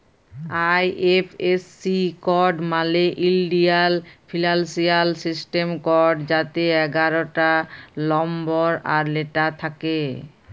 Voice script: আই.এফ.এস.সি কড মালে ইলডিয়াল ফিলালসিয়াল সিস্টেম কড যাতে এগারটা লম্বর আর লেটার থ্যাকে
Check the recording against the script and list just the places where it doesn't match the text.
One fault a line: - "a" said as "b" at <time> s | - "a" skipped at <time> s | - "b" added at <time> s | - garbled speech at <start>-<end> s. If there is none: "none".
none